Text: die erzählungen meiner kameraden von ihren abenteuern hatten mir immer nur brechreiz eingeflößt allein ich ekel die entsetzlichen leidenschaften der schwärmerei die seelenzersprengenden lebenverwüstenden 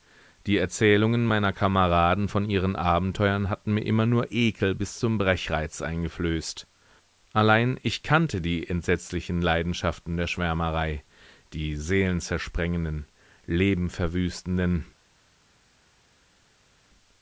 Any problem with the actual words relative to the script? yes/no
yes